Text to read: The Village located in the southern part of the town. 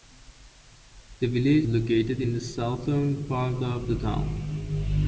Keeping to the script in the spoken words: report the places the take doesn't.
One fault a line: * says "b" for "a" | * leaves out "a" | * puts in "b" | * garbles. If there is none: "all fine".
all fine